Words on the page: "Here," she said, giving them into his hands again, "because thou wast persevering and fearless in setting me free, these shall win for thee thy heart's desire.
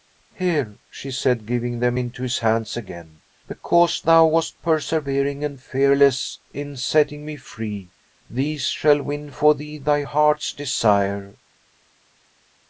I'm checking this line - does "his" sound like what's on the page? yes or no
yes